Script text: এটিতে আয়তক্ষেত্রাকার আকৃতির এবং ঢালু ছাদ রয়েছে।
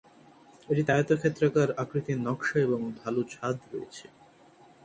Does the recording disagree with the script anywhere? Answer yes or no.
yes